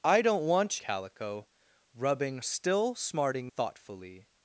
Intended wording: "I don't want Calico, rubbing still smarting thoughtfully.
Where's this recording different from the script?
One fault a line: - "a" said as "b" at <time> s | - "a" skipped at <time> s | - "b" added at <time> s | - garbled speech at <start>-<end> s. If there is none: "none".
none